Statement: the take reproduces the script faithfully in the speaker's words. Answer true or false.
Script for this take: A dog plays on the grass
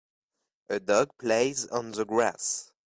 true